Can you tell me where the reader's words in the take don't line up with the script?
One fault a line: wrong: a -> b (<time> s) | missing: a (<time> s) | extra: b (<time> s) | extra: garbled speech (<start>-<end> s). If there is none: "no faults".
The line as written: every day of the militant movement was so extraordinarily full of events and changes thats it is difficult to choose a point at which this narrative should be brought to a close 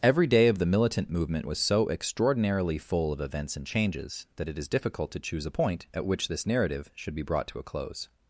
wrong: thats -> that (4.4 s)